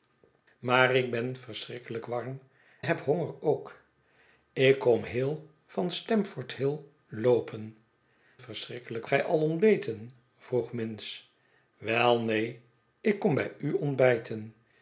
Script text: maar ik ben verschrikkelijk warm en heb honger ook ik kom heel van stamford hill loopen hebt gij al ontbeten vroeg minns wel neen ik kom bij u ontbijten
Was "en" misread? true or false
true